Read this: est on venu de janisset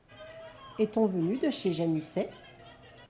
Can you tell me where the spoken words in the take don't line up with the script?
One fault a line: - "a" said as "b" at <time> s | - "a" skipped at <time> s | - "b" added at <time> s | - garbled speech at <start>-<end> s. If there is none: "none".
- "chez" added at 1.5 s